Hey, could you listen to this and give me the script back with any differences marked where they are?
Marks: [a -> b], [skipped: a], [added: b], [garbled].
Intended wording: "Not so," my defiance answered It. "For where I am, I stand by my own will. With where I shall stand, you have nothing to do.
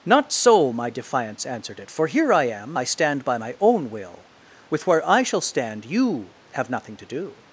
"Not so," my defiance answered It. "For [where -> here] I am, I stand by my own will. With where I shall stand, you have nothing to do.